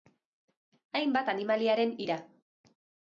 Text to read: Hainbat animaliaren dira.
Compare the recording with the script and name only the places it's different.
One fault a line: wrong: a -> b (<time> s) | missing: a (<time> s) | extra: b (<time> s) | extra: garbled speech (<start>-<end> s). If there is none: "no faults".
no faults